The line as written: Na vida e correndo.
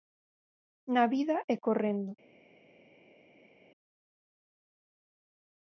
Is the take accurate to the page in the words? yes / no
yes